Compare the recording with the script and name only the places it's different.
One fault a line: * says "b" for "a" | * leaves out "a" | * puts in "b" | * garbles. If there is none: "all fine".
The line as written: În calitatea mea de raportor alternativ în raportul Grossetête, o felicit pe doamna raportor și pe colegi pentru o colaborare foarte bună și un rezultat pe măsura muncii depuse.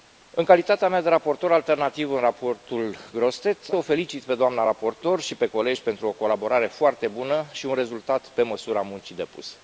all fine